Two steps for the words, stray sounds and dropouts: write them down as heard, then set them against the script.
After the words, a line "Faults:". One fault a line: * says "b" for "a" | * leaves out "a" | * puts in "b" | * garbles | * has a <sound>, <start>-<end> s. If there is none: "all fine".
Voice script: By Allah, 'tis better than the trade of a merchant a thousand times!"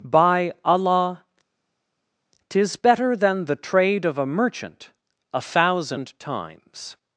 By Allah, 'tis better than the trade of a merchant a thousand times!"
Faults:
all fine